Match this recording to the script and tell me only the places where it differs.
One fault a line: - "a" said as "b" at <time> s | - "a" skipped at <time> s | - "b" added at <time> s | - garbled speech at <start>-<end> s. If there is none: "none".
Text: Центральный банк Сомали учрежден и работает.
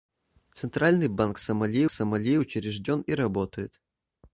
- "Сомали" added at 1.9 s